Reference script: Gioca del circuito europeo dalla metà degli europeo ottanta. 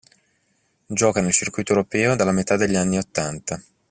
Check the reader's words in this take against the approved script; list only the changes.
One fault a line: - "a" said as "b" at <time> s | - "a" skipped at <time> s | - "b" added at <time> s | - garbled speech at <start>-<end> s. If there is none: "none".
- "del" said as "nel" at 1.2 s
- "europeo" said as "anni" at 2.8 s